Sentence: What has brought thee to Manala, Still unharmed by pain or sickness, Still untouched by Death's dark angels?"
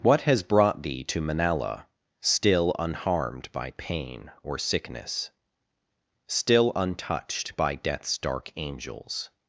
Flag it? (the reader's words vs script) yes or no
no